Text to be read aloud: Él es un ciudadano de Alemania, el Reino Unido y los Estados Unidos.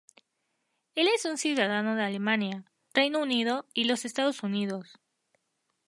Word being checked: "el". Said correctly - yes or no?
no